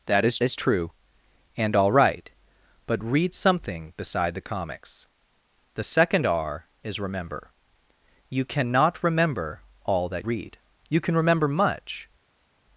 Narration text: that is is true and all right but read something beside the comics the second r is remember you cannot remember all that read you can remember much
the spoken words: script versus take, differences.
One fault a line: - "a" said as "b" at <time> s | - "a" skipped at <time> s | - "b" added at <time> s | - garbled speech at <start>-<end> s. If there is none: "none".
none